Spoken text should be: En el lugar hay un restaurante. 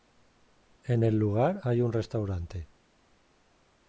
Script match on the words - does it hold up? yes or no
yes